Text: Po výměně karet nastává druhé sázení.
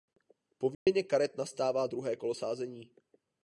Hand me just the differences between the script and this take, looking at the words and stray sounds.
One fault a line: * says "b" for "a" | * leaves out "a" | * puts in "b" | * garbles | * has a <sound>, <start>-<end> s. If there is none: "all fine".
* has a dropout, 0.7-0.9 s
* puts in "kolo"